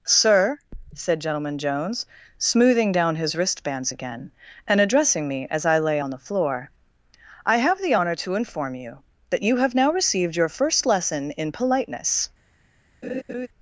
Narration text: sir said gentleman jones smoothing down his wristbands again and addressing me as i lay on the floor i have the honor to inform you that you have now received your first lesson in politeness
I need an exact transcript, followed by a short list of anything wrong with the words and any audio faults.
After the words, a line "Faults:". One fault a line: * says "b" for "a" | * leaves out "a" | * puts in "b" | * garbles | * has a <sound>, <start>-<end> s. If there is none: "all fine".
sir said gentleman jones smoothing down his wristbands again and addressing me as i lay on the floor i have the honor to inform you that you have now received your first lesson in politeness
Faults:
* has a laugh, 13.0-13.5 s